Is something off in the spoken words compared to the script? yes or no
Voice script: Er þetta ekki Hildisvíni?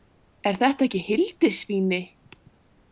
no